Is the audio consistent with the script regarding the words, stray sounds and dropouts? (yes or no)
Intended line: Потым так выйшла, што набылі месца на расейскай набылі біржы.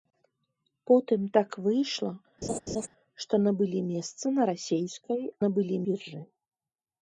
no